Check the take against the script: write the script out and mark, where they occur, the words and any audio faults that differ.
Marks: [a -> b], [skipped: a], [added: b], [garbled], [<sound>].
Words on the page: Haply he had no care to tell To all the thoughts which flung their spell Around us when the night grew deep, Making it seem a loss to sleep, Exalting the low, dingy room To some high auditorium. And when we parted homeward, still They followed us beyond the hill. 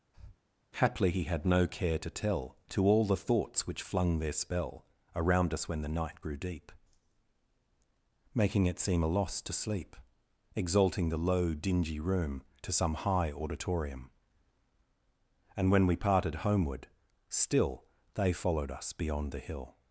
[breath] Haply he had no care to tell To all the thoughts which flung their spell Around us when the night grew deep, Making it seem a loss to sleep, Exalting the low, dingy room To some high auditorium. And when we parted homeward, still They followed us beyond the hill.